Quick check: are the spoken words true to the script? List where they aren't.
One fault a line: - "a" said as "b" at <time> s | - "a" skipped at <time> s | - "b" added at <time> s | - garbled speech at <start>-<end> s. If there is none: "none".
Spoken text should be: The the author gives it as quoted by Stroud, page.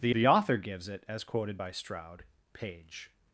none